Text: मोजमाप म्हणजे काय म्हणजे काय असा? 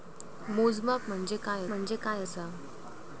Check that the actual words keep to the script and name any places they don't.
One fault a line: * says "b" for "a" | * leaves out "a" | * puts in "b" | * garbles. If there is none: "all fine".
all fine